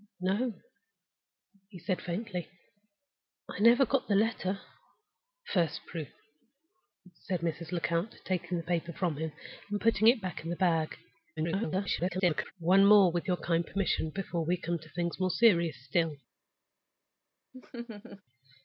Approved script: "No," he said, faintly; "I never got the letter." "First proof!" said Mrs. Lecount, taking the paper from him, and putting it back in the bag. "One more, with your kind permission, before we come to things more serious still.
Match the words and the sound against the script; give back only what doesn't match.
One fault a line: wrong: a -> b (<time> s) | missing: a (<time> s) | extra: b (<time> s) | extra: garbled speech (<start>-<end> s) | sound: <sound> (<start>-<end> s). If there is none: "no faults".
extra: garbled speech (11.4-12.5 s)
sound: laugh (17.5-18.2 s)